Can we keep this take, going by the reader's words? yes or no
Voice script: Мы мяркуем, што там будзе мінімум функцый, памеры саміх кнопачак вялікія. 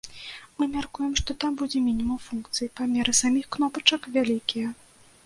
yes